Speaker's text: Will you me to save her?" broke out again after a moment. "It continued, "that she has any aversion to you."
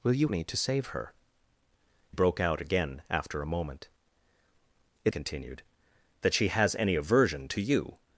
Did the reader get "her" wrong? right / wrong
right